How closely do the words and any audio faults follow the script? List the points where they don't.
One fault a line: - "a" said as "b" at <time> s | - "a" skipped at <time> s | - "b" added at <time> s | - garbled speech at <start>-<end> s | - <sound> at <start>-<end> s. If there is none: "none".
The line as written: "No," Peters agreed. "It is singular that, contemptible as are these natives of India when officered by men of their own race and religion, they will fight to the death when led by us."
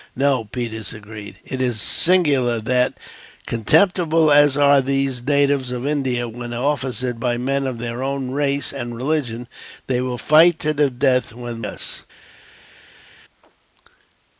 - "led by" skipped at 11.7 s